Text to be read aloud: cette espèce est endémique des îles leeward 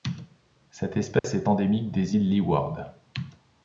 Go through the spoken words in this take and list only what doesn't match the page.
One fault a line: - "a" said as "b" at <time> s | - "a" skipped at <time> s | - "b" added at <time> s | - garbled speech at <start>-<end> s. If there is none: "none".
none